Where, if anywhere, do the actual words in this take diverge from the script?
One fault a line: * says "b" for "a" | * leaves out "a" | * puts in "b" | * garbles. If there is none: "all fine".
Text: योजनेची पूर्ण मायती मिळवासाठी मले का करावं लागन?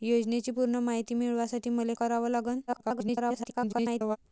* leaves out "का"
* garbles